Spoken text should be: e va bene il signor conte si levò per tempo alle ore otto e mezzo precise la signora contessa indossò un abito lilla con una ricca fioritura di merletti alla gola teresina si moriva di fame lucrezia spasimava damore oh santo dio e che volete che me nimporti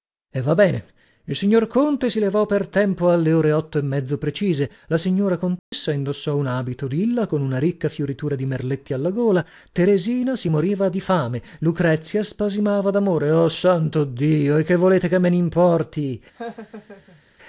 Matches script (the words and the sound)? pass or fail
fail